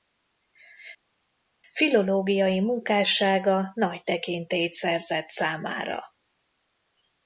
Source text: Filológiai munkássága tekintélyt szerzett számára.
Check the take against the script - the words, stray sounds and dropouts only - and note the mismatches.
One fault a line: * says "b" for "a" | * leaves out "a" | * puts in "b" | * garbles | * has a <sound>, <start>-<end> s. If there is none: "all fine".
* puts in "nagy"